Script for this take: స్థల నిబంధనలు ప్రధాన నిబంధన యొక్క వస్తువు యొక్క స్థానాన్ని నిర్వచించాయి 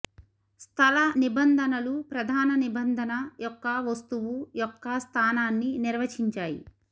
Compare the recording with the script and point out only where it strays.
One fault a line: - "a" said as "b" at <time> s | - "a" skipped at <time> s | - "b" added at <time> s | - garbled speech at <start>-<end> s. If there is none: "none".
none